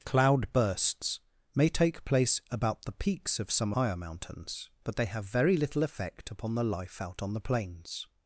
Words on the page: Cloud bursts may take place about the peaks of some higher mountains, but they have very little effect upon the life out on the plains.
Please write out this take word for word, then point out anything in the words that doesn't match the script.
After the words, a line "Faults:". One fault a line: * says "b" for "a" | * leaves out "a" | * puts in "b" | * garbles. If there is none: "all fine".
Cloud bursts may take place about the peaks of some higher mountains, but they have very little effect upon the life out on the plains.
Faults:
all fine